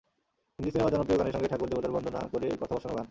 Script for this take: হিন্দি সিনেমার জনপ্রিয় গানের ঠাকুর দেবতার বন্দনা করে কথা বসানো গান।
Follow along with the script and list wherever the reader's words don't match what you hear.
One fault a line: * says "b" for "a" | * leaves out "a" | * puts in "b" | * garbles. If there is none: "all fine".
* puts in "সঙ্গে"